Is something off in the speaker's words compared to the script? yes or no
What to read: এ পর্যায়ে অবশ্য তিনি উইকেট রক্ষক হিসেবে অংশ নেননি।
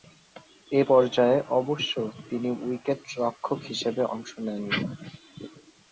no